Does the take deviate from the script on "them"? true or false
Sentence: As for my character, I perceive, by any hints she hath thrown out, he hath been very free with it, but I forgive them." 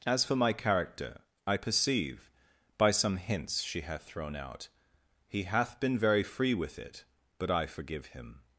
true